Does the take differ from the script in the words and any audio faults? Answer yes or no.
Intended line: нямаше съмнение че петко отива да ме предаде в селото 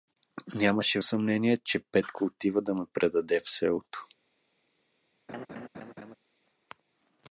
yes